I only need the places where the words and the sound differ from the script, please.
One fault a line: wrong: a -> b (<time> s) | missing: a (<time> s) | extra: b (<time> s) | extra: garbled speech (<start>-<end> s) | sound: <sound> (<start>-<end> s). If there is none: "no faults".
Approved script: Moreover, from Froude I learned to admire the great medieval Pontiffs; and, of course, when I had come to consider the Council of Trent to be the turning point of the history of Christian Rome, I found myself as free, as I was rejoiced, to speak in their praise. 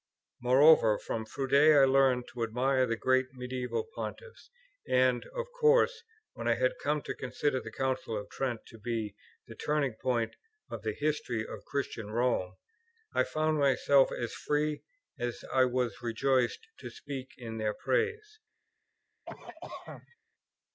sound: cough (19.3-20.2 s)